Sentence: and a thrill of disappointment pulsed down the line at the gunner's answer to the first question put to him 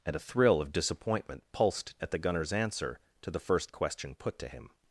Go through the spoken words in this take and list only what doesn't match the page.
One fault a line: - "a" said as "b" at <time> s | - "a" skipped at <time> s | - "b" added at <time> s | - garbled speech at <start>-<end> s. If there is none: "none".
- "down the line" skipped at 2.0 s